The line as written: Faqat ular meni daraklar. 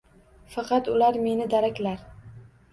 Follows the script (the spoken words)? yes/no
yes